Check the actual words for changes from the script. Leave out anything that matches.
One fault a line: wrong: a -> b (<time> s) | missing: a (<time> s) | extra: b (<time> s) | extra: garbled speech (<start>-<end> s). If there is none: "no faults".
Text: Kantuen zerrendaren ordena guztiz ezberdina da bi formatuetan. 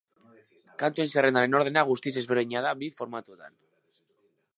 no faults